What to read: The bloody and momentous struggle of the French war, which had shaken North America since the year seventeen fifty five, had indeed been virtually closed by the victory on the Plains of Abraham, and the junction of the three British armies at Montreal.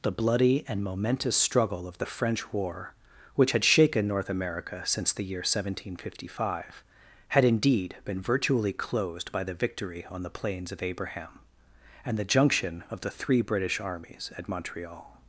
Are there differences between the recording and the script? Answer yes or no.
no